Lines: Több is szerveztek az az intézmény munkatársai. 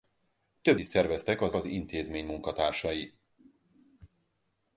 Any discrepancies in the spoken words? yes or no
no